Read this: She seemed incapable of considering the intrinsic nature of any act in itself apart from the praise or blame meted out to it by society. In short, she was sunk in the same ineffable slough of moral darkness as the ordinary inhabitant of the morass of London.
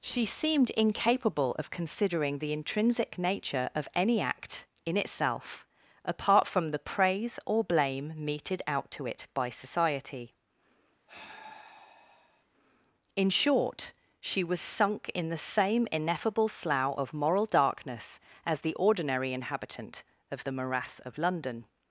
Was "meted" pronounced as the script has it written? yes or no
yes